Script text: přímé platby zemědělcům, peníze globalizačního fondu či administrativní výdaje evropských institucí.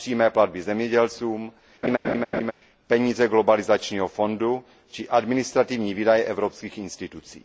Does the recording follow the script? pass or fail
pass